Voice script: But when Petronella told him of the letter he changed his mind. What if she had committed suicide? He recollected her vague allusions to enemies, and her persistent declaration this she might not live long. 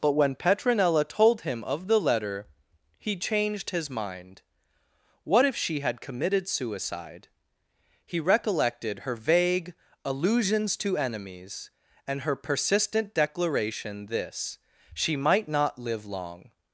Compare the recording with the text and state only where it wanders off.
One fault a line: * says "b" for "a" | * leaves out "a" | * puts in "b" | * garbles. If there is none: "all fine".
all fine